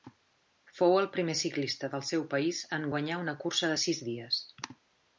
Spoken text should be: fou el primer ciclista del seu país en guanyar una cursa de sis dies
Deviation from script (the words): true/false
false